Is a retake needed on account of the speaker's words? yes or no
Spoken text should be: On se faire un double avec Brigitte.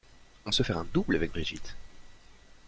no